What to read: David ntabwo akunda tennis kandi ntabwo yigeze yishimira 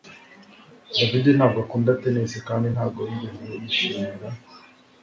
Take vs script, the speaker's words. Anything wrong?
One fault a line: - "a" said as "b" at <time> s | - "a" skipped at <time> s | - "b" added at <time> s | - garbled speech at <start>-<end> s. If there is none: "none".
none